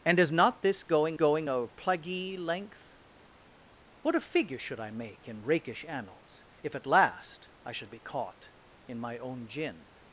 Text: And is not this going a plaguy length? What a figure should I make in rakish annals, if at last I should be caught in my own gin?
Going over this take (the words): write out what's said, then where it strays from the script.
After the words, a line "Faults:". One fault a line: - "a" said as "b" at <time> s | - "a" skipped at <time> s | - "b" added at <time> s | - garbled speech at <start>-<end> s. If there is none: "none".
And is not this going going a plaguy length? What a figure should I make in rakish annals, if at last I should be caught in my own gin?
Faults:
- "going" added at 1.1 s